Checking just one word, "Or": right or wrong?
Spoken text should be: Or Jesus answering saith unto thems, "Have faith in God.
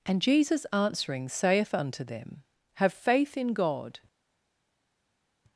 wrong